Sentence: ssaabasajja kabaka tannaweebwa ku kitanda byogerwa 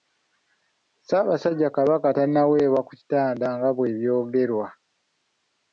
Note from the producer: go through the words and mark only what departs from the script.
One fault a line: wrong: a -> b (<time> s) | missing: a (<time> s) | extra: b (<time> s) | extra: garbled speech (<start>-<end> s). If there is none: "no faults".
extra: nga bwe (3.6 s)